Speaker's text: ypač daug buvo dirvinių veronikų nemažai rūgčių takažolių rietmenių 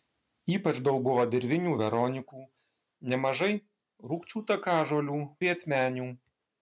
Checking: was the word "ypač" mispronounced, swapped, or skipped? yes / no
no